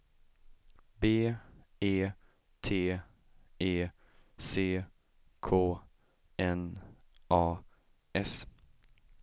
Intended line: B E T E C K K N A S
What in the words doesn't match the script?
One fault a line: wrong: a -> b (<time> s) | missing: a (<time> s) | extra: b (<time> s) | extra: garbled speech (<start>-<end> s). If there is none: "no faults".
missing: K (5.8 s)